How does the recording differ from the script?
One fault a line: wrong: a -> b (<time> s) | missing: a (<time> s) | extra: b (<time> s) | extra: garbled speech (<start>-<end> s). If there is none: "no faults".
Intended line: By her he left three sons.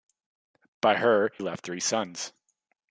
missing: he (1.3 s)